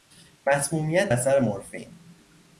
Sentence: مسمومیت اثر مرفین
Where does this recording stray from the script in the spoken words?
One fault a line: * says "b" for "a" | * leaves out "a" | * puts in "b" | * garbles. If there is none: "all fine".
all fine